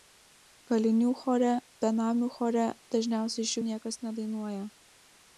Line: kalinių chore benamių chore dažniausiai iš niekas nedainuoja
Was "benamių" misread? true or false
false